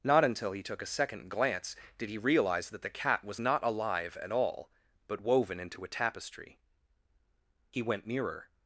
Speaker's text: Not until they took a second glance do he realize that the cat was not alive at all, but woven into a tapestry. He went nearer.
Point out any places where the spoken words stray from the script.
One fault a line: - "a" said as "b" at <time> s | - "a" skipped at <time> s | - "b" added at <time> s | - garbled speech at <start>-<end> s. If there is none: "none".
- "they" said as "he" at 0.5 s
- "do" said as "did" at 2.0 s